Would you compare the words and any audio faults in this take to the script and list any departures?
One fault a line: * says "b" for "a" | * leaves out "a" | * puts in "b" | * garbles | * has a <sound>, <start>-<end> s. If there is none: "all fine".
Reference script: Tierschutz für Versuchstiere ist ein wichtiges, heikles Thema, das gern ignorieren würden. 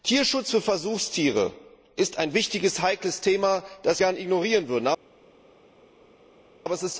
all fine